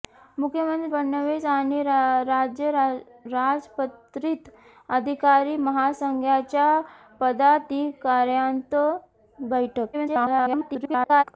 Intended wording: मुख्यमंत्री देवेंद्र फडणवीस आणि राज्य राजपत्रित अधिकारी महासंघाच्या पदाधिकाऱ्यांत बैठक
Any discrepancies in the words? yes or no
yes